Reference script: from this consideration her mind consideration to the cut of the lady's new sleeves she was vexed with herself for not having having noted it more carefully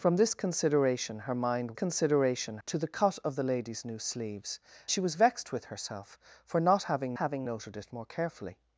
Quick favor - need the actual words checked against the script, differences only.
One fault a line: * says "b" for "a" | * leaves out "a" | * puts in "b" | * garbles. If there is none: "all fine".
all fine